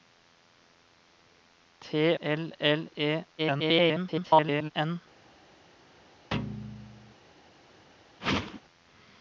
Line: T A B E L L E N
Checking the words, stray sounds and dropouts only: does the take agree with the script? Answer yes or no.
no